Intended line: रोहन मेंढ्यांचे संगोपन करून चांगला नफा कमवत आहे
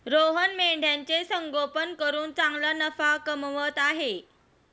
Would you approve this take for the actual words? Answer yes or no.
yes